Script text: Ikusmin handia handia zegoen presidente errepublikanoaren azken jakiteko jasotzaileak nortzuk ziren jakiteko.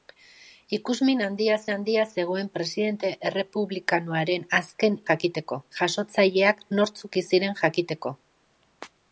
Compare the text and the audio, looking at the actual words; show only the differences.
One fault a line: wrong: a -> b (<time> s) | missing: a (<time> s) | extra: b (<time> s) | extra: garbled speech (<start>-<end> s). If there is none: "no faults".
no faults